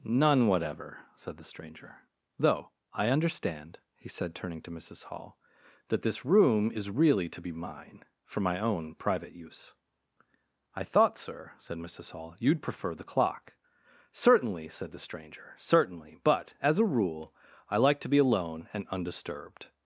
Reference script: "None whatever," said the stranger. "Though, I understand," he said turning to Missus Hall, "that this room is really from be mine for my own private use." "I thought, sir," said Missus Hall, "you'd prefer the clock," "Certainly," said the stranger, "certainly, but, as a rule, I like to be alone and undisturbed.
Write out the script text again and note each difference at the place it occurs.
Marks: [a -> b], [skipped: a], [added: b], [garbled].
"None whatever," said the stranger. "Though, I understand," he said turning to Missus Hall, "that this room is really [from -> to] be mine for my own private use." "I thought, sir," said Missus Hall, "you'd prefer the clock," "Certainly," said the stranger, "certainly, but, as a rule, I like to be alone and undisturbed.